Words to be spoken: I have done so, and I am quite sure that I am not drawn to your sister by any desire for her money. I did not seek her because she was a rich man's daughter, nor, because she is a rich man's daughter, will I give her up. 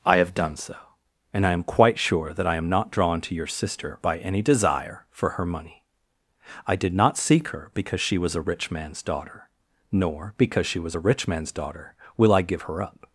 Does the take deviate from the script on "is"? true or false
true